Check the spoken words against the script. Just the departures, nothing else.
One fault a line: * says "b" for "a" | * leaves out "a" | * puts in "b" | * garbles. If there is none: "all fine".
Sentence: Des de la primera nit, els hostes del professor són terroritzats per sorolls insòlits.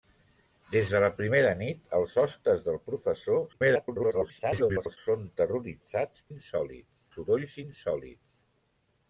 * garbles
* says "insòlits" for "per"